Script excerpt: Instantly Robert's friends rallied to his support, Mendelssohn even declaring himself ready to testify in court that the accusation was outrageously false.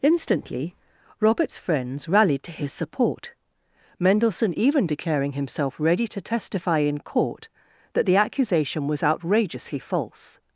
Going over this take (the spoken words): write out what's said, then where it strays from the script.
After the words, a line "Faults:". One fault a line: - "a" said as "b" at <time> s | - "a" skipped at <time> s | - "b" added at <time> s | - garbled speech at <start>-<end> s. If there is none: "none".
Instantly Robert's friends rallied to his support, Mendelssohn even declaring himself ready to testify in court that the accusation was outrageously false.
Faults:
none